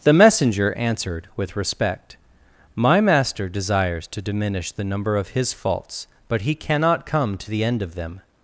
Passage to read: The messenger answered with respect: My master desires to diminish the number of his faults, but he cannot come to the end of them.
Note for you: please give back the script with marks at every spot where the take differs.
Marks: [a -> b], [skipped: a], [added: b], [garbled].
The messenger answered with respect: My master desires to diminish the number of his faults, but he cannot come to the end of them.